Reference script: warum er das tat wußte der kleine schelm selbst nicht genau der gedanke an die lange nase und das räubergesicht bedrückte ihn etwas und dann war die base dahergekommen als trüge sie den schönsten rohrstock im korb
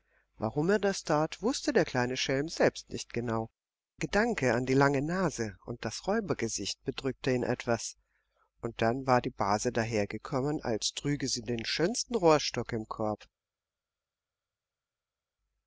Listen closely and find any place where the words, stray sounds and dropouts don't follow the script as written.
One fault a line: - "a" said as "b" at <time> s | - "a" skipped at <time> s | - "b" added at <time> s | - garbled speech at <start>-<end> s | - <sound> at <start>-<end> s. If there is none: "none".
- "der" skipped at 3.5 s